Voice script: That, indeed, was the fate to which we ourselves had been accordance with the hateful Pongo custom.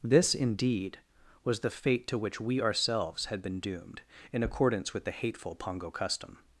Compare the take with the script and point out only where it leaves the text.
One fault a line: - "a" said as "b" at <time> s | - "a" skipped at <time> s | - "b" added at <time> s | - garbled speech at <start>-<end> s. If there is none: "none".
- "That" said as "This" at 0.0 s
- "doomed in" added at 3.6 s